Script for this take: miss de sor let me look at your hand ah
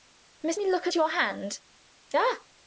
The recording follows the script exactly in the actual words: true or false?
false